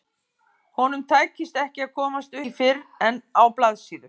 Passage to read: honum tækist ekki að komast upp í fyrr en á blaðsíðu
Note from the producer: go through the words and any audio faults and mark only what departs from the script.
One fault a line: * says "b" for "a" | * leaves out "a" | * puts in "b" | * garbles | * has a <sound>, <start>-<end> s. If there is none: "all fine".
* leaves out "upp"